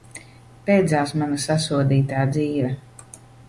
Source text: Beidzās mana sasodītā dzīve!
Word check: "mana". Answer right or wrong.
right